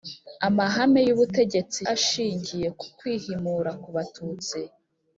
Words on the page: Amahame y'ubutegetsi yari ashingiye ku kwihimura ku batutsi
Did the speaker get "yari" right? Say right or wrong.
wrong